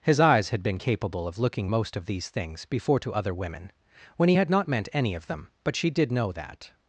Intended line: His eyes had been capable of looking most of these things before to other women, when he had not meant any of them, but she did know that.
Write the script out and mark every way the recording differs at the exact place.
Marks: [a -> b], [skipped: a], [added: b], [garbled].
His eyes had been capable of looking most of these things before to other women, when he had not meant any of them, but she did know that.